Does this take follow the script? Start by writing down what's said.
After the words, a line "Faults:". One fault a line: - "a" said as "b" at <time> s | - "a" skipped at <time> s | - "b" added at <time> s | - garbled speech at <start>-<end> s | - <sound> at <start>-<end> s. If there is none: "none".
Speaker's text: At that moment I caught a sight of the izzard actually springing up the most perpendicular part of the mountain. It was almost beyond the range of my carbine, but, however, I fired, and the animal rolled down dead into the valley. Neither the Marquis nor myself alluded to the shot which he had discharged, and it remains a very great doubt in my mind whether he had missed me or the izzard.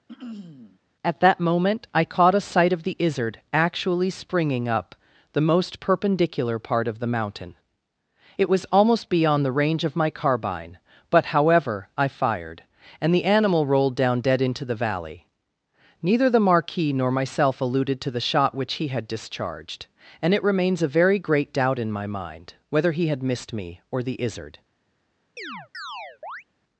At that moment I caught a sight of the izzard actually springing up the most perpendicular part of the mountain. It was almost beyond the range of my carbine, but, however, I fired, and the animal rolled down dead into the valley. Neither the Marquis nor myself alluded to the shot which he had discharged, and it remains a very great doubt in my mind whether he had missed me or the izzard.
Faults:
- throat clearing at 0.1-0.8 s
- chirp at 25.4-26.4 s